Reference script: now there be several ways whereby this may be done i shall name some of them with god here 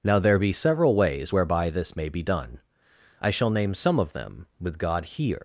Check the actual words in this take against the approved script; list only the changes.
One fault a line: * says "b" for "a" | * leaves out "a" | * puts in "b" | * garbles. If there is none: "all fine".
all fine